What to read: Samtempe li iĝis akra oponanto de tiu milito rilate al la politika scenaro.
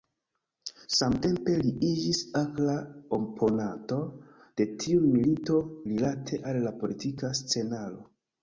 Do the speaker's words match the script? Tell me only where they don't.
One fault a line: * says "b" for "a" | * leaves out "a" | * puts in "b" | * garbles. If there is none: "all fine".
all fine